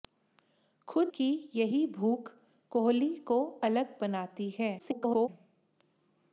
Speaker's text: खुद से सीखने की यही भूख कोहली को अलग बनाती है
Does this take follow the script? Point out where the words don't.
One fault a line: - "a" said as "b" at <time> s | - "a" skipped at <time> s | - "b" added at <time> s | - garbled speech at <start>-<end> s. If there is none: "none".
- "से सीखने" skipped at 1.1 s
- garbled speech at 4.8-5.3 s